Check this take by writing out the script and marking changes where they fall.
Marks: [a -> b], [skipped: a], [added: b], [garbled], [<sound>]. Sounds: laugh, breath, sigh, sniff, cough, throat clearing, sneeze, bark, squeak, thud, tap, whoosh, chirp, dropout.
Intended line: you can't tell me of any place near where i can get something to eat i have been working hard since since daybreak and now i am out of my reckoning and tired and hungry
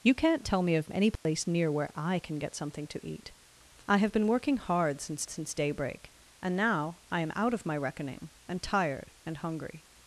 you can't tell me of any place [dropout] near where i can get something to eat i have been working hard since since daybreak and now i am out of my reckoning and tired and hungry